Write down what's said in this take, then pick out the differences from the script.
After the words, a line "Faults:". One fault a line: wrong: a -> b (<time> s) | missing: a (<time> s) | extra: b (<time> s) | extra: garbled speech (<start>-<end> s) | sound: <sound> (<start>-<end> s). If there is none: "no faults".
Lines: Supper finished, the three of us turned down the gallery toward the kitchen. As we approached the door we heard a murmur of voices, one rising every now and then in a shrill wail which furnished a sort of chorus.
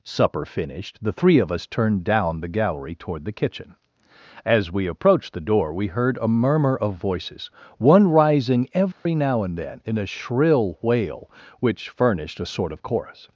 Supper finished, the three of us turned down the gallery toward the kitchen. As we approached the door we heard a murmur of voices, one rising every now and then in a shrill wail which furnished a sort of chorus.
Faults:
sound: dropout (8.9-9.1 s)